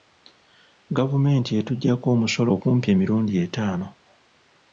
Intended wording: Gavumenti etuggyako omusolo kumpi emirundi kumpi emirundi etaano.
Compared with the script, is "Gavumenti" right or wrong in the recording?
right